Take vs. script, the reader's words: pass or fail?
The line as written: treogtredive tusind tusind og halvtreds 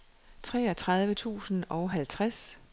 fail